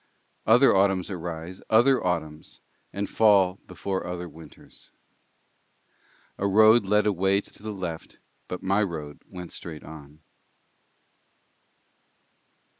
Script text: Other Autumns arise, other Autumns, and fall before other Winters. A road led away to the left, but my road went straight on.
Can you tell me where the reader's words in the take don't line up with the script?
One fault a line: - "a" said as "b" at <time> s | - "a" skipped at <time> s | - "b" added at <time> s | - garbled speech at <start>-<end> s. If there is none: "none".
- "to" added at 7.5 s